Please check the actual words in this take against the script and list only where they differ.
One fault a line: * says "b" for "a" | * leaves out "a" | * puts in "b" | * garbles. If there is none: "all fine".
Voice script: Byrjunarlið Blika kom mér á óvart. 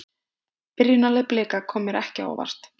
* puts in "ekki"